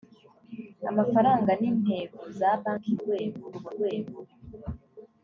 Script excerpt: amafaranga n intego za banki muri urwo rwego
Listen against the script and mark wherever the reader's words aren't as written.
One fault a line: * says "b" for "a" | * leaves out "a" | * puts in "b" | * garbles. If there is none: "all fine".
* says "rwego" for "muri"